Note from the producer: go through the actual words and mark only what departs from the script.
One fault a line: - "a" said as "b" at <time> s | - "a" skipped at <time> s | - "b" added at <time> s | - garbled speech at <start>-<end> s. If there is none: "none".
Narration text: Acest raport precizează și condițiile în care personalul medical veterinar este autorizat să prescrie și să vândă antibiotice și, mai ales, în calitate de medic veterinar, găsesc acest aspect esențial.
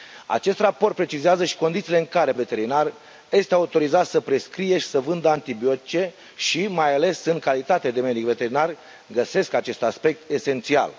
- "personalul medical" skipped at 2.3 s